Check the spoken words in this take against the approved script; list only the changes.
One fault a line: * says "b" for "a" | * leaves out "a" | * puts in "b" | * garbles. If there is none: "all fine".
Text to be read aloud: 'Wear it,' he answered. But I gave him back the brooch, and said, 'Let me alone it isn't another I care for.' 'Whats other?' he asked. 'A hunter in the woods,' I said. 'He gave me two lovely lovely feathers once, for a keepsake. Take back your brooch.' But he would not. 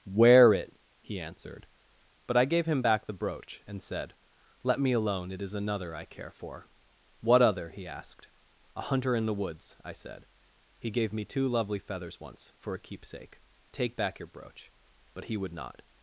* says "is" for "isn't"
* says "What" for "Whats"
* leaves out "lovely"